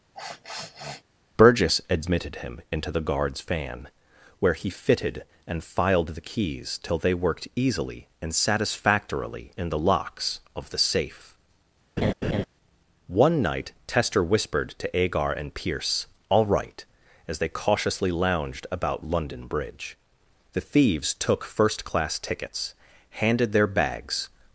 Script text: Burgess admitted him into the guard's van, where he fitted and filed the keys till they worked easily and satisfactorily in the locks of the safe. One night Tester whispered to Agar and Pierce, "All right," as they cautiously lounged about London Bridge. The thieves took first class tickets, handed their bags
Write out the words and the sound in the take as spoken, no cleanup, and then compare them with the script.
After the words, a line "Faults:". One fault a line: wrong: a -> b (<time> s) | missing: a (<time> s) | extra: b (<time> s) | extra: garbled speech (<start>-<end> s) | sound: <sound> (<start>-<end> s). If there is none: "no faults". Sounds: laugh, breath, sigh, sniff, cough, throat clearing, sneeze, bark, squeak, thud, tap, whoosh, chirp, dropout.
Burgess admitted him into the guard's van, where he fitted and filed the keys till they worked easily and satisfactorily in the locks of the safe. One night Tester whispered to Agar and Pierce, "All right," as they cautiously lounged about London Bridge. The thieves took first class tickets, handed their bags
Faults:
sound: sniff (0.1-1.0 s)
sound: laugh (12.0-12.4 s)